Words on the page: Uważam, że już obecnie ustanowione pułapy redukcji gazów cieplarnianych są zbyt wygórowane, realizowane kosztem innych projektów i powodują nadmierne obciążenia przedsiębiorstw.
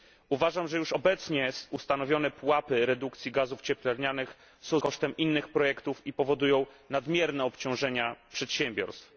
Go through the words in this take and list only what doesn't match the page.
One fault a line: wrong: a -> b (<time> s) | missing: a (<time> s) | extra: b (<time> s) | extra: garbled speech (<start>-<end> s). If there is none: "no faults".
missing: zbyt wygórowane realizowane (4.8 s)